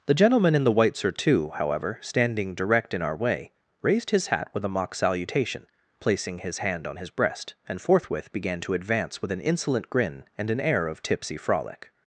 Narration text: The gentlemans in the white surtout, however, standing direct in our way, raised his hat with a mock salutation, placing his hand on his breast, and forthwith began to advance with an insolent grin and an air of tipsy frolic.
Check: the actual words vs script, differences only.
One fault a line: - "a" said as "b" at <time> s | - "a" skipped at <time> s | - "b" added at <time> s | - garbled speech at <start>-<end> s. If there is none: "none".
- "gentlemans" said as "gentleman" at 0.1 s